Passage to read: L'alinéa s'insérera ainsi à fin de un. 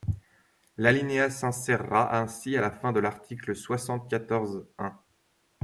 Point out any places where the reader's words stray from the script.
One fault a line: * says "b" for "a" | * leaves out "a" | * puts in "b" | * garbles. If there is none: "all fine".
* puts in "la"
* puts in "l'article soixante quatorze"